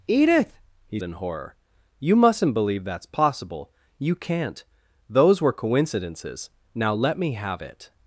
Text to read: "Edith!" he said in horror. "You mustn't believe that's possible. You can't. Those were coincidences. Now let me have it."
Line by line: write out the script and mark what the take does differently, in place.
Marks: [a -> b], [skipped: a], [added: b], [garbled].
"Edith!" he [skipped: said] in horror. "You mustn't believe that's possible. You can't. Those were coincidences. Now let me have it."